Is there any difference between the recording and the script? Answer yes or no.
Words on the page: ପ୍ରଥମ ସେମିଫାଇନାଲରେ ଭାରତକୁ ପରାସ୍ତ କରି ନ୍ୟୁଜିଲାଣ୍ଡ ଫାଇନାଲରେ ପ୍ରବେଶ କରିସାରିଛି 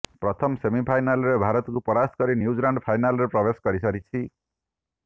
no